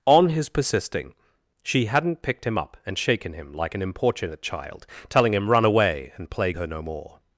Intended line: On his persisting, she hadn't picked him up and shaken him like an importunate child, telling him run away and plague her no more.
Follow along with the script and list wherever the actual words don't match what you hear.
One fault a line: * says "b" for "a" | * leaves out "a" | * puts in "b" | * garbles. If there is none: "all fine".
all fine